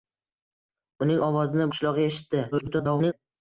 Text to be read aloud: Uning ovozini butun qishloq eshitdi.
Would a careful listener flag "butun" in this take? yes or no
yes